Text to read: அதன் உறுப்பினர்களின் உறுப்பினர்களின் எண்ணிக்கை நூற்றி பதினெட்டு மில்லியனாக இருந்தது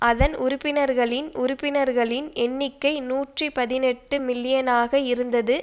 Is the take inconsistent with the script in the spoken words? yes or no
no